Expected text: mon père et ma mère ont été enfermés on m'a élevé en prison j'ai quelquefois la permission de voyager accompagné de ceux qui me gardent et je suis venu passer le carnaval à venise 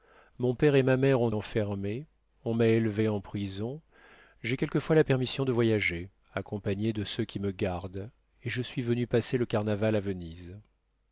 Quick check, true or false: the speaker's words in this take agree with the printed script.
false